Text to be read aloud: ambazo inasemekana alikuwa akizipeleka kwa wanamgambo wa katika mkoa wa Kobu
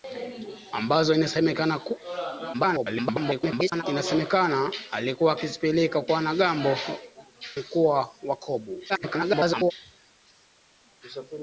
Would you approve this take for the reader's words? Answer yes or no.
no